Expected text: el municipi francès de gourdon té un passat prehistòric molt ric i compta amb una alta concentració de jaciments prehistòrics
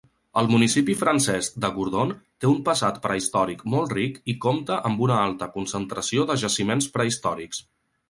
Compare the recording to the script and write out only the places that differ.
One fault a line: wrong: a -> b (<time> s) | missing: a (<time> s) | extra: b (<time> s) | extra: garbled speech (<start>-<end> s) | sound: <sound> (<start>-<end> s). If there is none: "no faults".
no faults